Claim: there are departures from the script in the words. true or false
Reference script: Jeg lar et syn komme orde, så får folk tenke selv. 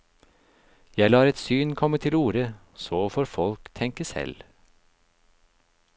true